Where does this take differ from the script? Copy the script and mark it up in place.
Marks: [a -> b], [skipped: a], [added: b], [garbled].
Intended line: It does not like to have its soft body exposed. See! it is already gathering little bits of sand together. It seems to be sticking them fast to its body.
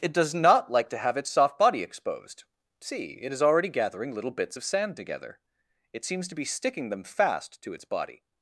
It does not like to have its soft body exposed. See! it is already gathering little bits of sand together. It seems to be sticking them fast to its body.